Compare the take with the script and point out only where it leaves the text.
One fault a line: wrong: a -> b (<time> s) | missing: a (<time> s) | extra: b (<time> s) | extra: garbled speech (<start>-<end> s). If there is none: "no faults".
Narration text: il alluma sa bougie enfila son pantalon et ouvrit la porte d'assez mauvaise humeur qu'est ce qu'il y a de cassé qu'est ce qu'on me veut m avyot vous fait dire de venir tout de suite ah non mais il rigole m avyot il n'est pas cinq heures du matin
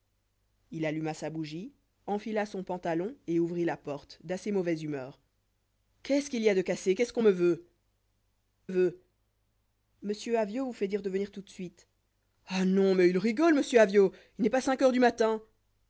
extra: veut (8.7 s)